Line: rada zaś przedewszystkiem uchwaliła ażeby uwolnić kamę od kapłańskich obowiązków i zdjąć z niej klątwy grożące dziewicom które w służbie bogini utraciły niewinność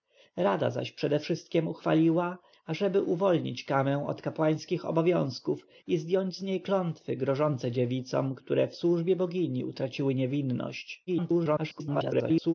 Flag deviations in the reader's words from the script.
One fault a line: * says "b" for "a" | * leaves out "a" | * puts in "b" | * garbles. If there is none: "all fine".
* garbles